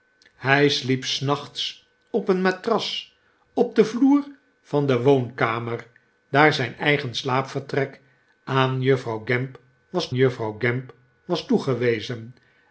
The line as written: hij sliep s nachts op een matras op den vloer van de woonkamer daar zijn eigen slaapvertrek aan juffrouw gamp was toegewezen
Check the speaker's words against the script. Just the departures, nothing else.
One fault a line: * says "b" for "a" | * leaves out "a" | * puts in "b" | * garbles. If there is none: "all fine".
* puts in "juffrouw gamp was"